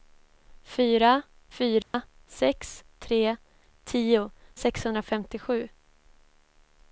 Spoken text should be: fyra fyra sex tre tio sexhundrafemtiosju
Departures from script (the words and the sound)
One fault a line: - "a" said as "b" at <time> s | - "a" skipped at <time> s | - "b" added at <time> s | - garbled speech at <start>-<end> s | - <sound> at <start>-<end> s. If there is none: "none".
- dropout at 1.8-1.9 s